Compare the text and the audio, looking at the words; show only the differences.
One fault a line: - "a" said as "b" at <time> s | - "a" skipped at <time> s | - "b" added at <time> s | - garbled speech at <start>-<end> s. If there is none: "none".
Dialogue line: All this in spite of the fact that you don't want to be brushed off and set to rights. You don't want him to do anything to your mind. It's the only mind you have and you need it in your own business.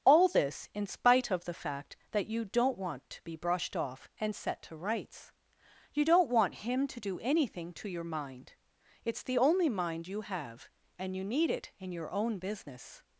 none